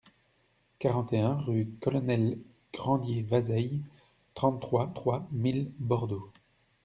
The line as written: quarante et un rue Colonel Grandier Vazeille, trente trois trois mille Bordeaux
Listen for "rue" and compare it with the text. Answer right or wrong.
right